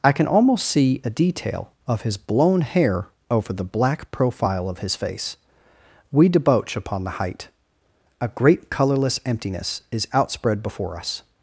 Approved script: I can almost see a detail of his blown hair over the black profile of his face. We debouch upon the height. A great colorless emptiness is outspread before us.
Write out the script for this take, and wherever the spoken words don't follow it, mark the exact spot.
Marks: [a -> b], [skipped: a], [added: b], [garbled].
I can almost see a detail of his blown hair over the black profile of his face. We debouch upon the height. A great colorless emptiness is outspread before us.